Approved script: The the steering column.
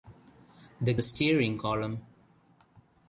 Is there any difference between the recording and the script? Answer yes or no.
no